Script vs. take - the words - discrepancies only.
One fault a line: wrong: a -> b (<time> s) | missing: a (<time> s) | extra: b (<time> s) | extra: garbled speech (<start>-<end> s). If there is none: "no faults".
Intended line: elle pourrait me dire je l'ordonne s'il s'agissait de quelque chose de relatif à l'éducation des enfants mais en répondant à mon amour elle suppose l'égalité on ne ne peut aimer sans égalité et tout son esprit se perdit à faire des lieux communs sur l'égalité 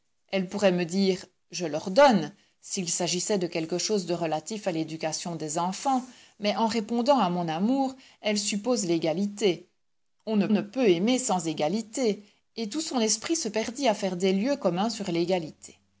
no faults